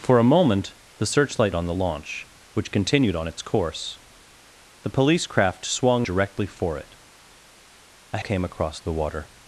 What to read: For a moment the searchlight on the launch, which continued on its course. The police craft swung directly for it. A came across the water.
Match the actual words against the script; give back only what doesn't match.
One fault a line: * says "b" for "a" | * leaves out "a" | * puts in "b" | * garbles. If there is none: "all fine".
all fine